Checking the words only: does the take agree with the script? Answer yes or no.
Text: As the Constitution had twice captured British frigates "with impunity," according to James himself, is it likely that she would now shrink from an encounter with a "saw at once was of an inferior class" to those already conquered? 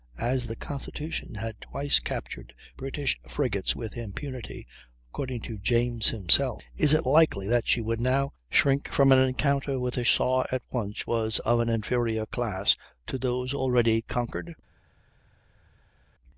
yes